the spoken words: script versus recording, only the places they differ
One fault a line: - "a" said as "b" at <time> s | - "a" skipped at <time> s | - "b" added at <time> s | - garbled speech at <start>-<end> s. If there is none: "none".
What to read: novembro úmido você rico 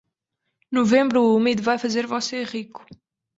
- "vai fazer" added at 1.6 s